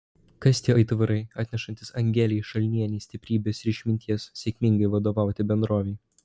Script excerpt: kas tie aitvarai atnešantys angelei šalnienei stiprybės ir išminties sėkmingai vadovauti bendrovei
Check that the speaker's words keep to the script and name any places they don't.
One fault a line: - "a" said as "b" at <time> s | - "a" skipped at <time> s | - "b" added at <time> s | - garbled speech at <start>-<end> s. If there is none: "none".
none